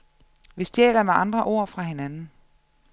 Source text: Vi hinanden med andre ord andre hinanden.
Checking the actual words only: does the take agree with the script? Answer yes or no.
no